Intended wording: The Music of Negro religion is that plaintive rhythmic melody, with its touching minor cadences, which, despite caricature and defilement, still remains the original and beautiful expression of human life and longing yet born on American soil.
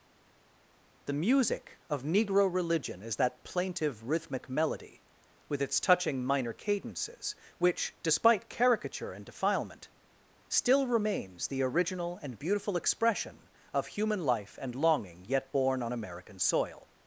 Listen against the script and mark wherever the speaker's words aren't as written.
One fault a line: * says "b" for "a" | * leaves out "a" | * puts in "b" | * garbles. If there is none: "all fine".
all fine